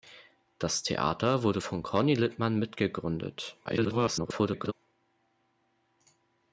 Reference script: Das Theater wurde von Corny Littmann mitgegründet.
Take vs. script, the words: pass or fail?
fail